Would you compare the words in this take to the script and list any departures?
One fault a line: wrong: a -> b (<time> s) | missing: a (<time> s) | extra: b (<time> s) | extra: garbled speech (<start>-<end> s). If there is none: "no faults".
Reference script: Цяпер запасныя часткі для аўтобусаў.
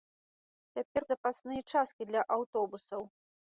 no faults